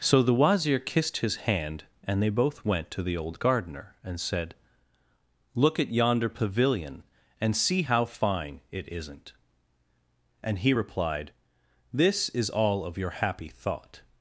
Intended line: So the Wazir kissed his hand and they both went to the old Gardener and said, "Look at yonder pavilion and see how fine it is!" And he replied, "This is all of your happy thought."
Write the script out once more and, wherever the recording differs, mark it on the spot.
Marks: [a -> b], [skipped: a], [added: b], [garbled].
So the Wazir kissed his hand and they both went to the old Gardener and said, "Look at yonder pavilion and see how fine it [is!" -> isn't] And he replied, "This is all of your happy thought."